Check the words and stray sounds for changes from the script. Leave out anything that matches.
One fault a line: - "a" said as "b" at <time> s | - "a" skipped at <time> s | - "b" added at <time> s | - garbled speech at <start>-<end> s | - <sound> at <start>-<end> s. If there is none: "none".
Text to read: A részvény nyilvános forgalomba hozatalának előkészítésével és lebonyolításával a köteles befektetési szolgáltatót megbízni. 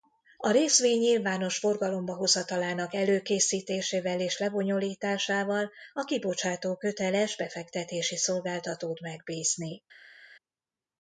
- "kibocsátó" added at 6.0 s